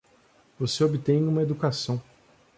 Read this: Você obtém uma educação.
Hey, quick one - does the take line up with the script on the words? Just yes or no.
yes